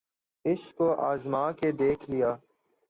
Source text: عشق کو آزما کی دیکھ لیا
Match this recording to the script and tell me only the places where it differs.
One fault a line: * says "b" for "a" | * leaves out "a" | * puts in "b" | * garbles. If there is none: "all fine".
* says "کے" for "کی"